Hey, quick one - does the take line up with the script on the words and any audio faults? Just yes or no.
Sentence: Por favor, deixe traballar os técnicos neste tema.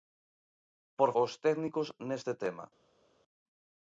no